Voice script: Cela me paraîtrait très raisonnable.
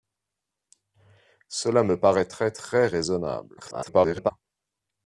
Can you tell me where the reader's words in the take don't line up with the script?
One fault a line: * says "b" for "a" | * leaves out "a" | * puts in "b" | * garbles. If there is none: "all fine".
* garbles